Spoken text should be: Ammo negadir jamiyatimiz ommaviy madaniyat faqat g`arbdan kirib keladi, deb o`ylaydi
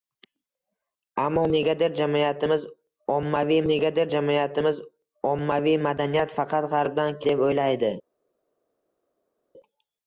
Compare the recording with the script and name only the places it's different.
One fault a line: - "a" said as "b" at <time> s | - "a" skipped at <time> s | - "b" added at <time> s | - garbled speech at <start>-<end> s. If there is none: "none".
- "negadir jamiyatimiz ommaviy" added at 3.7 s
- "kirib keladi" skipped at 7.2 s